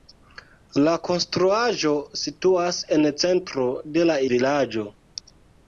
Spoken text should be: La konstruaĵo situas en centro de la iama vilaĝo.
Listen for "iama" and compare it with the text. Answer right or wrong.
wrong